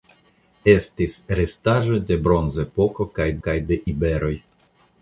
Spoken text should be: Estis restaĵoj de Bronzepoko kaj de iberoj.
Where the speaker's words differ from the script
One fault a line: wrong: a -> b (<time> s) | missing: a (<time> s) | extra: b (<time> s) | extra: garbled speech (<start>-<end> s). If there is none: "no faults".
extra: kaj (3.5 s)